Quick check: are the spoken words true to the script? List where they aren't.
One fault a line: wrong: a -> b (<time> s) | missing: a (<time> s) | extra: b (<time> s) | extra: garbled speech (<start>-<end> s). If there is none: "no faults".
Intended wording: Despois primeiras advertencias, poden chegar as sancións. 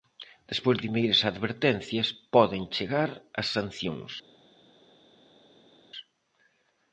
no faults